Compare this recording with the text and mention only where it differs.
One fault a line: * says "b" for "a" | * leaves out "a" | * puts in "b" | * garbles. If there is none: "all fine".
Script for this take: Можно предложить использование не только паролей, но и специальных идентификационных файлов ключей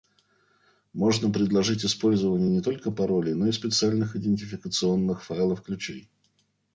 all fine